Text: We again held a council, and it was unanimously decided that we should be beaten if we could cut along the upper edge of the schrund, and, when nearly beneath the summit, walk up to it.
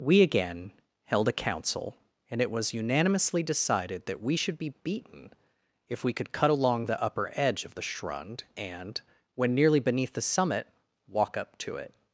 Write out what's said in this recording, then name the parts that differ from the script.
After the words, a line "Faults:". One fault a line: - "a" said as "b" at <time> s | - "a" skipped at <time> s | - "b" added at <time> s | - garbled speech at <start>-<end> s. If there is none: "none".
We again held a council, and it was unanimously decided that we should be beaten if we could cut along the upper edge of the schrund, and, when nearly beneath the summit, walk up to it.
Faults:
none